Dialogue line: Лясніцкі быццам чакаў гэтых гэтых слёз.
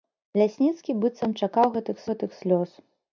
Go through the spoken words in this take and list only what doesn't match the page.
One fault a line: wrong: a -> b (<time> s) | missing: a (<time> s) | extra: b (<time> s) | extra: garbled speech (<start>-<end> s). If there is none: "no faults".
no faults